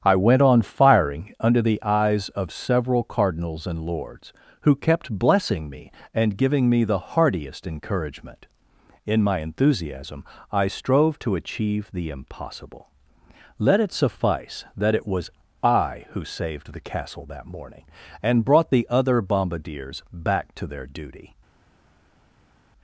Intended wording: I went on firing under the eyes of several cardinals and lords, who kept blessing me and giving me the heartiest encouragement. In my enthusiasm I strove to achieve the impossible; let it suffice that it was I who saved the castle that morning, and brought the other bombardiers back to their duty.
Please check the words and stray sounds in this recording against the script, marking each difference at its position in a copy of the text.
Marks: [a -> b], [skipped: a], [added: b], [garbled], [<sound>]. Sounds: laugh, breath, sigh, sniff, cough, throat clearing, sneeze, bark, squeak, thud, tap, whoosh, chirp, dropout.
I went on firing under the eyes of several cardinals and lords, who kept blessing me and giving me the heartiest encouragement. In my enthusiasm I strove to achieve the impossible; let it suffice that it was I who saved the castle that morning, and brought the other bombardiers back to their duty.